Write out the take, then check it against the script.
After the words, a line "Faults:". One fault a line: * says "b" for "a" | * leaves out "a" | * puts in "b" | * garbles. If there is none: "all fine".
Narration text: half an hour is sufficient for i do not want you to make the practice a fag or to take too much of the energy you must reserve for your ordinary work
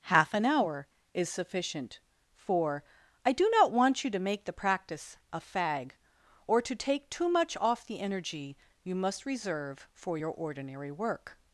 half an hour is sufficient for i do not want you to make the practice a fag or to take too much off the energy you must reserve for your ordinary work
Faults:
* says "off" for "of"